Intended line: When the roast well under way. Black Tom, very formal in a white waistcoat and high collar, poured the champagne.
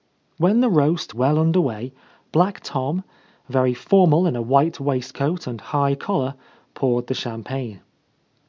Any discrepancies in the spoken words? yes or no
no